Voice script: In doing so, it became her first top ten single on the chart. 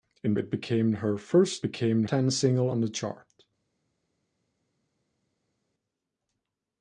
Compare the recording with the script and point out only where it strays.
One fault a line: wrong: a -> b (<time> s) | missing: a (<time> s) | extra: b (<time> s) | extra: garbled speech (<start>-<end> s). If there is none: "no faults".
missing: doing so (0.3 s)
wrong: top -> became (1.6 s)